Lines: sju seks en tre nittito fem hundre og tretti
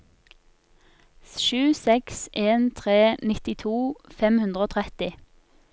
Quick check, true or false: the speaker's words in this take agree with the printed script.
true